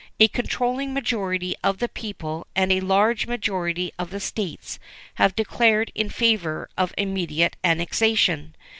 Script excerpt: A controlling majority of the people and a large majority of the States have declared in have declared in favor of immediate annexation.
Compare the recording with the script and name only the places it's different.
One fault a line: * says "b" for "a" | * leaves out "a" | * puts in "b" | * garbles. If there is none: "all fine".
* leaves out "have declared in"